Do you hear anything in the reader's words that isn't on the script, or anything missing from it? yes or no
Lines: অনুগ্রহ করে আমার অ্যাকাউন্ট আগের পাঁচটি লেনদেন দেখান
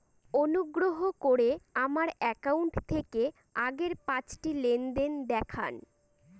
yes